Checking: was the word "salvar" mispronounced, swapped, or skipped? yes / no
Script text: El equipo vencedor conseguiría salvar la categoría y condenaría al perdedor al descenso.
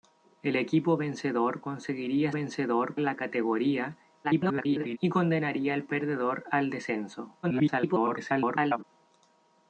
yes